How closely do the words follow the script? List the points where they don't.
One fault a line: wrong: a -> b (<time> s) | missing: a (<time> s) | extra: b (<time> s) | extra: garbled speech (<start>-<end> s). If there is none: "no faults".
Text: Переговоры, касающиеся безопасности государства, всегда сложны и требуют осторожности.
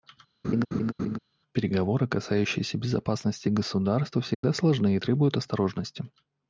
no faults